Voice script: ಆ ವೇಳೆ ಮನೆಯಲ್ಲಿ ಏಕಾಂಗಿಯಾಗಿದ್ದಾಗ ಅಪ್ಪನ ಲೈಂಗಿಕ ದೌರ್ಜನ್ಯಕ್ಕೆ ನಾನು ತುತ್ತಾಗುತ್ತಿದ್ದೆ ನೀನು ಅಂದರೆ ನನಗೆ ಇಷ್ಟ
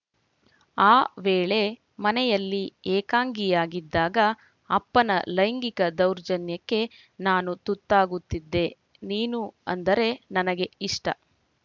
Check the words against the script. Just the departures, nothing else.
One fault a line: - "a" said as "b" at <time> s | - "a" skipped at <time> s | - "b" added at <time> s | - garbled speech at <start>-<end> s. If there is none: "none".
none